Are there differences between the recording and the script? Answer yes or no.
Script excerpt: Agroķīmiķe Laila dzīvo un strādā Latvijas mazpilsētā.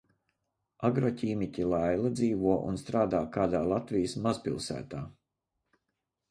yes